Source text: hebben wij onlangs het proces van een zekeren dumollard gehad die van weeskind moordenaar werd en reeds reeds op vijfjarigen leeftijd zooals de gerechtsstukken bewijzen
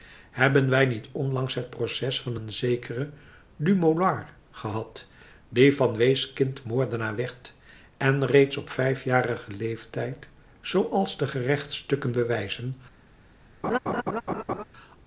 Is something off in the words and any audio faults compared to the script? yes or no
yes